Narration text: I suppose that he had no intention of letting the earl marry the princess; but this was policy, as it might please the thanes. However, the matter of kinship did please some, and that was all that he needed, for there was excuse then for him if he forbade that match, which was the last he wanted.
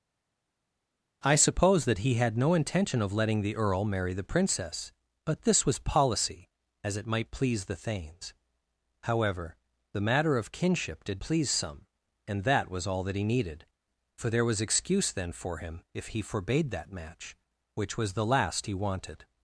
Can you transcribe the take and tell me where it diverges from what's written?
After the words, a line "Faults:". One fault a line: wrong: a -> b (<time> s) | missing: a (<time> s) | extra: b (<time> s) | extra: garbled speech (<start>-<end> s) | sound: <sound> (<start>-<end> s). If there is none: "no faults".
I suppose that he had no intention of letting the earl marry the princess; but this was policy, as it might please the thanes. However, the matter of kinship did please some, and that was all that he needed, for there was excuse then for him if he forbade that match, which was the last he wanted.
Faults:
no faults